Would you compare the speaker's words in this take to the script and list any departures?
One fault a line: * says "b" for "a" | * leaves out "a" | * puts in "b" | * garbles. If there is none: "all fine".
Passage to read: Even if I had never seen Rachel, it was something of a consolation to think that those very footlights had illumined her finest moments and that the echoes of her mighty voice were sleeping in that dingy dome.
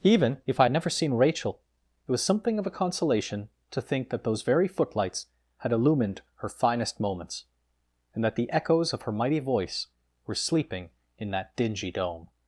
all fine